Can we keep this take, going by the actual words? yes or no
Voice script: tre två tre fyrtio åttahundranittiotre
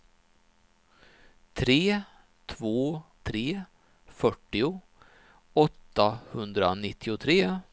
yes